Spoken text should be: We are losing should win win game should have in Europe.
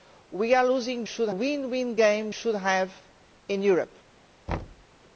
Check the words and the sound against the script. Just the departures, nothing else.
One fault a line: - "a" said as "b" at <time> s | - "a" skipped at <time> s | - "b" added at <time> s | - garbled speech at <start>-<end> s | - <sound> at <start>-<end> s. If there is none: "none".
- thud at 4.5-4.9 s